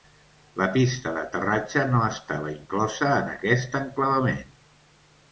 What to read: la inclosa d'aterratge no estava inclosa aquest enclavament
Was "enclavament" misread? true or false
false